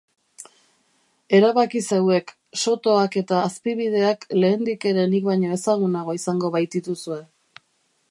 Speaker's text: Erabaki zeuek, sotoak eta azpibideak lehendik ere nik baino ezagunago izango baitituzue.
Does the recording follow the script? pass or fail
pass